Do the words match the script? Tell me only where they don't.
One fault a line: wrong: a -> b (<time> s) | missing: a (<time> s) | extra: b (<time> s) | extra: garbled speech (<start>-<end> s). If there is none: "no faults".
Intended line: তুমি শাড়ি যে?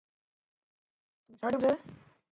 no faults